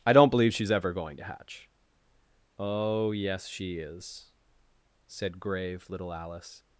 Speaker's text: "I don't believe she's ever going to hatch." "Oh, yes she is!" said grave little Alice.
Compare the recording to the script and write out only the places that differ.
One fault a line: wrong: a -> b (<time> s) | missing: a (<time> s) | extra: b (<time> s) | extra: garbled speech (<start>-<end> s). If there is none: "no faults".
no faults